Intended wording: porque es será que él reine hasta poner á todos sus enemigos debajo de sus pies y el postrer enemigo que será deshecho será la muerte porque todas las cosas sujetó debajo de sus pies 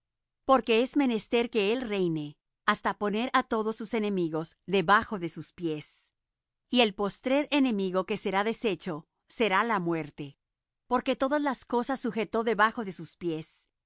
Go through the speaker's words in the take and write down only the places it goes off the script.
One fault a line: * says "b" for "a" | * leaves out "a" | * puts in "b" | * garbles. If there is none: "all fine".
* says "menester" for "será"